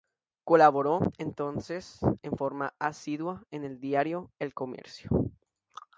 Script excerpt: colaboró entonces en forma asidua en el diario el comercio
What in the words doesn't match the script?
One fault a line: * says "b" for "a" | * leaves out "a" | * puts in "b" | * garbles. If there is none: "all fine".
all fine